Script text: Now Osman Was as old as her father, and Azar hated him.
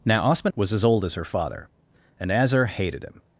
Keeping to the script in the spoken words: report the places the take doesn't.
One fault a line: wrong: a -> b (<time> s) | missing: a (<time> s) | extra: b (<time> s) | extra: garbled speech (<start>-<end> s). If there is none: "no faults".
no faults